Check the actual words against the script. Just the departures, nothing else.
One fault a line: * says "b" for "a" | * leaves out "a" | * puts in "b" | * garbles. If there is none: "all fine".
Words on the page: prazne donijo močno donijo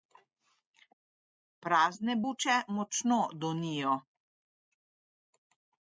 * says "buče" for "donijo"